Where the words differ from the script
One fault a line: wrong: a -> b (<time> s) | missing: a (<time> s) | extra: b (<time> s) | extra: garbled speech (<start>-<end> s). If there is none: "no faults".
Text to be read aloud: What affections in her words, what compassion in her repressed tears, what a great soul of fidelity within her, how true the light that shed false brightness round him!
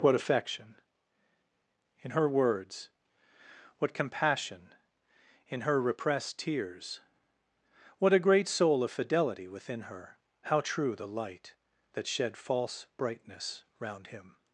wrong: affections -> affection (0.1 s)